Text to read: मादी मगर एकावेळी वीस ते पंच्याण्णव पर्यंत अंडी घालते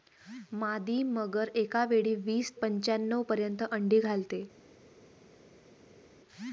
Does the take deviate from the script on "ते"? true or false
true